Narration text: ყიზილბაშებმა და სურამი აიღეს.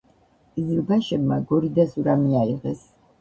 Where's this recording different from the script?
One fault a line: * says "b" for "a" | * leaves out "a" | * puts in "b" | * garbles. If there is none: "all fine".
* puts in "გორი"